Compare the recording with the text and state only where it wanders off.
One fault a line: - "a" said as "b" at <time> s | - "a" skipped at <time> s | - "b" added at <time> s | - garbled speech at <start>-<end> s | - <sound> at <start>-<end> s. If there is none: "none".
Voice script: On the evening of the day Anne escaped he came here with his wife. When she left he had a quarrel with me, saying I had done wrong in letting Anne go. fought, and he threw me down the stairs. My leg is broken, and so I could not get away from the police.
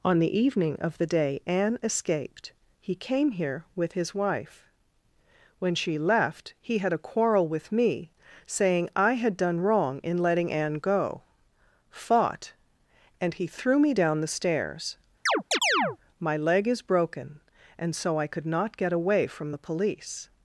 - chirp at 15.3-16.0 s